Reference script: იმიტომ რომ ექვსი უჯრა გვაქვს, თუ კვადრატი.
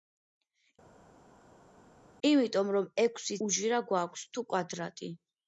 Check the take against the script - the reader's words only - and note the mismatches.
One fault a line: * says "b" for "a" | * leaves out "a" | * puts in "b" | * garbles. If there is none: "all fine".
all fine